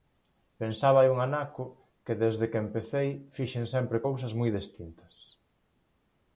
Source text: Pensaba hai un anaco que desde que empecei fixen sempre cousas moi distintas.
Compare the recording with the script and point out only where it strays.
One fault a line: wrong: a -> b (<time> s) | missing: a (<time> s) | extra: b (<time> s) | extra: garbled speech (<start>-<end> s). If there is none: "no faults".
no faults